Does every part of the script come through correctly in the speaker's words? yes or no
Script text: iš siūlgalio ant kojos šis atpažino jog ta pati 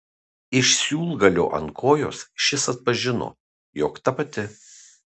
yes